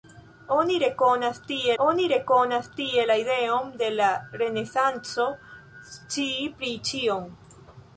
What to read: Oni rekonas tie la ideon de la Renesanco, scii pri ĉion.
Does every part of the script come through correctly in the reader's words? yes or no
no